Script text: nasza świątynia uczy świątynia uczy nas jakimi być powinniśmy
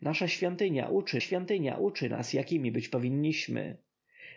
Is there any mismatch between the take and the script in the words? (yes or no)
no